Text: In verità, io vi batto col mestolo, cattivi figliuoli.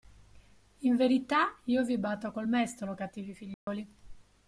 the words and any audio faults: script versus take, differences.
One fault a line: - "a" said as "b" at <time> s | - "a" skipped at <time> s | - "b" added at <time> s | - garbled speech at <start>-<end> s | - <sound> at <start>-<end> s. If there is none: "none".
- dropout at 3.5-3.7 s